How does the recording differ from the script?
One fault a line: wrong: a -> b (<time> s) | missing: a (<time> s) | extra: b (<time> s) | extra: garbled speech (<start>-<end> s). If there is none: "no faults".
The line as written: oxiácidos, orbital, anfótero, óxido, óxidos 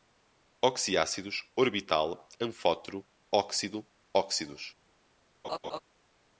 no faults